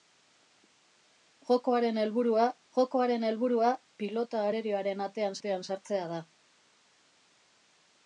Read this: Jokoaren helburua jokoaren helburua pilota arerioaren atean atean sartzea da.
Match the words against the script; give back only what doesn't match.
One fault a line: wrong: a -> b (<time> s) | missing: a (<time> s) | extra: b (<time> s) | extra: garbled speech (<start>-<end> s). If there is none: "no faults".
no faults